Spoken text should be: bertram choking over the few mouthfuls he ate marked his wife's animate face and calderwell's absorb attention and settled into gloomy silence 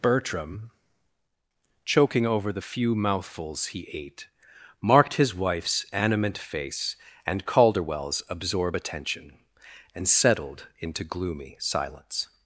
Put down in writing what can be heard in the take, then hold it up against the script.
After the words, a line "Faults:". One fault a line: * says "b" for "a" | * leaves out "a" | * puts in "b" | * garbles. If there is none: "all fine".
bertram choking over the few mouthfuls he ate marked his wife's animate face and calderwell's absorb attention and settled into gloomy silence
Faults:
all fine